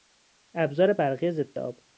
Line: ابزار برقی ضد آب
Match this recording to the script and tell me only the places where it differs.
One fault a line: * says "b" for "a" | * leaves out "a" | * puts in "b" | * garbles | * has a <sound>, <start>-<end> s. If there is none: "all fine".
all fine